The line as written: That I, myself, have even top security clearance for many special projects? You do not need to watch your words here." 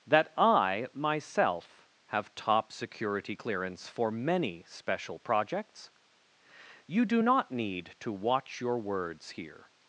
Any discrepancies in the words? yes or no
yes